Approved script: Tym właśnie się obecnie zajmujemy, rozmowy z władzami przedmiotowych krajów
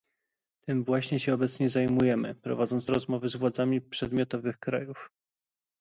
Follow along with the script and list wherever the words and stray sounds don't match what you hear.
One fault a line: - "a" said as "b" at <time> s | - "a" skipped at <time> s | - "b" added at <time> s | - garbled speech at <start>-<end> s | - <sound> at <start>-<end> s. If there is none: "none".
- "prowadząc" added at 2.4 s